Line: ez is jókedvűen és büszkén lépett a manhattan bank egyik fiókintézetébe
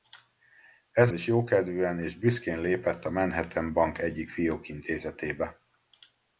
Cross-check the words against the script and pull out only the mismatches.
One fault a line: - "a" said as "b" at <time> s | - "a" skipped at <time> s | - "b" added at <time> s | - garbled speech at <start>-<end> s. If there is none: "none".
none